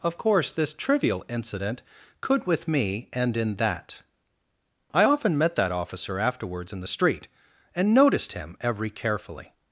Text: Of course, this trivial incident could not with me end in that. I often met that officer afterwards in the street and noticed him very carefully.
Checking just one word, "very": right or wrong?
wrong